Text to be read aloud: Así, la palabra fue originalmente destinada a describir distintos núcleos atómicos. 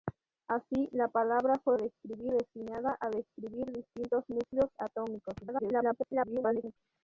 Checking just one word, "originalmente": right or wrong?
wrong